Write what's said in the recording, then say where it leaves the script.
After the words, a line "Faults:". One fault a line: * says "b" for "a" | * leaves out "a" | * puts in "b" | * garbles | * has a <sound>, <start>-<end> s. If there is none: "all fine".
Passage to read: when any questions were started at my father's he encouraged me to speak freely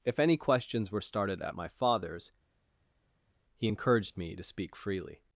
if any questions were started at my father's he encouraged me to speak freely
Faults:
* says "if" for "when"